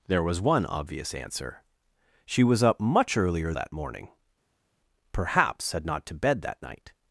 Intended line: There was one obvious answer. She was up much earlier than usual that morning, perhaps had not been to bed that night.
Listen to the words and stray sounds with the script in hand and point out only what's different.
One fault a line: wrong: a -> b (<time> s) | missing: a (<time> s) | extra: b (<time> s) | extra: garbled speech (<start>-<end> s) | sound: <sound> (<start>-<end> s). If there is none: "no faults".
missing: than usual (3.5 s)
missing: been (6.1 s)